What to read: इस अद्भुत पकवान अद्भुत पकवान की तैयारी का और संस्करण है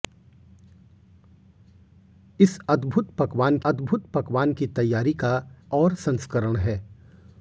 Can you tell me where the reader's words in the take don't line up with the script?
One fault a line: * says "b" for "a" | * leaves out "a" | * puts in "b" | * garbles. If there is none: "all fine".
all fine